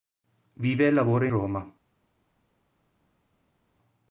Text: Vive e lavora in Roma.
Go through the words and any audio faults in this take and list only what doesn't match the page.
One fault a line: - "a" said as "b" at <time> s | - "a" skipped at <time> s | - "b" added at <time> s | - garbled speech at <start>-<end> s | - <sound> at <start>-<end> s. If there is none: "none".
- "in" skipped at 1.3 s